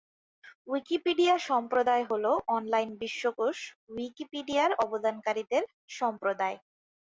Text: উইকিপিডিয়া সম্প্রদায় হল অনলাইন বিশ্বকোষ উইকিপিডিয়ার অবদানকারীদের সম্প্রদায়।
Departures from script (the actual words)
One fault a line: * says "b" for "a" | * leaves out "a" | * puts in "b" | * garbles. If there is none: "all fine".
all fine